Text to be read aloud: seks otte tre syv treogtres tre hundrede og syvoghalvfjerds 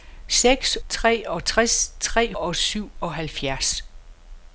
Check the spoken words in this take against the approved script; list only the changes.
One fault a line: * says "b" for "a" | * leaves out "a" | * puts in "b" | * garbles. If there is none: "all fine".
* leaves out "otte tre syv"
* leaves out "hundrede"